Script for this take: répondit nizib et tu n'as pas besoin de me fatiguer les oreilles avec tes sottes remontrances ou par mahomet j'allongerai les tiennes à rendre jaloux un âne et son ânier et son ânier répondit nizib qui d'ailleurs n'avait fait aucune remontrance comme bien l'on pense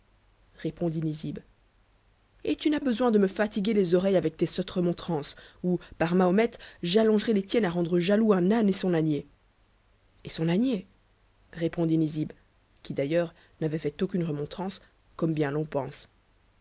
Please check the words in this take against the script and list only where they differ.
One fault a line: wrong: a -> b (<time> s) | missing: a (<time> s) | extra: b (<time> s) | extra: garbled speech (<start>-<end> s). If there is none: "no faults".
missing: pas (2.8 s)